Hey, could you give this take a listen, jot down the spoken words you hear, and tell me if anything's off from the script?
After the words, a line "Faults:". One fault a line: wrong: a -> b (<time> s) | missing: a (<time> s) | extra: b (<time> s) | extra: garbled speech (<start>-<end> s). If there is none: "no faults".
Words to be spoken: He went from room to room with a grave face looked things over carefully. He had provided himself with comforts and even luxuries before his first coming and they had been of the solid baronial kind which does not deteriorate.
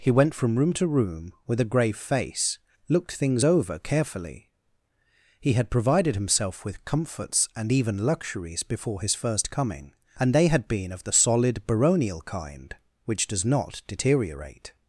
He went from room to room with a grave face looked things over carefully. He had provided himself with comforts and even luxuries before his first coming and they had been of the solid baronial kind which does not deteriorate.
Faults:
no faults